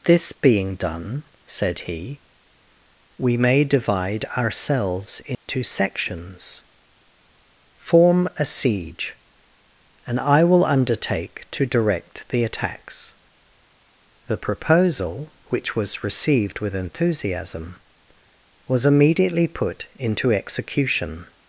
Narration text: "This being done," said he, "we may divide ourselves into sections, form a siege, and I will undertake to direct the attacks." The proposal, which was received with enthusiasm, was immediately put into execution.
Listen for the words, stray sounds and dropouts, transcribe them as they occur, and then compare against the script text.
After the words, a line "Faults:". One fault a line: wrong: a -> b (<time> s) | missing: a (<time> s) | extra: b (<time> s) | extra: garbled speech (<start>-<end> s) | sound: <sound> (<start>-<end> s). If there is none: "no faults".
"This being done," said he, "we may divide ourselves into sections, form a siege, and I will undertake to direct the attacks." The proposal, which was received with enthusiasm, was immediately put into execution.
Faults:
sound: dropout (5.3-5.5 s)